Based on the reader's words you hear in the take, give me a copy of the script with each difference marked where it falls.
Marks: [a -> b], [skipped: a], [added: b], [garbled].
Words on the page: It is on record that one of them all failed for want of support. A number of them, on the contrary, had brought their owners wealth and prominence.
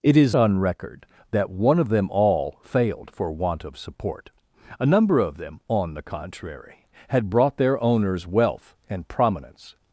It is on record that one of them all failed for want of support. A number of them, on the contrary, had brought their owners wealth and prominence.